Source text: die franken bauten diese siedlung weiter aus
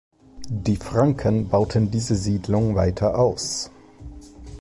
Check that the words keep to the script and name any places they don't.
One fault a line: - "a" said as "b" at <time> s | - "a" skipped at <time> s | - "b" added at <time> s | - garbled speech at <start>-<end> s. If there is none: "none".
none